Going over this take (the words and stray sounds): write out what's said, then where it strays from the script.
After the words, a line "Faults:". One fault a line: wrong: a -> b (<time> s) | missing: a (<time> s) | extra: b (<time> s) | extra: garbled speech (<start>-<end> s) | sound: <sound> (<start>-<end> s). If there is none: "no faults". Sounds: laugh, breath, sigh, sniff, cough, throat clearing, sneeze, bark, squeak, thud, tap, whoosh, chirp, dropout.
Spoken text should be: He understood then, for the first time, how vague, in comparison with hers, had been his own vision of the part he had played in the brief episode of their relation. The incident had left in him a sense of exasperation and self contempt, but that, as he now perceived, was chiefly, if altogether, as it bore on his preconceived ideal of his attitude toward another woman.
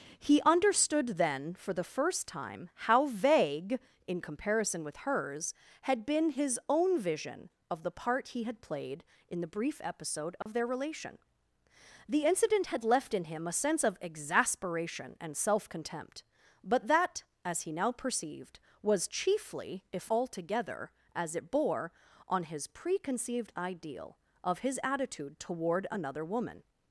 He understood then, for the first time, how vague, in comparison with hers, had been his own vision of the part he had played in the brief episode of their relation. The incident had left in him a sense of exasperation and self contempt, but that, as he now perceived, was chiefly, if altogether, as it bore on his preconceived ideal of his attitude toward another woman.
Faults:
sound: dropout (10.4-10.5 s)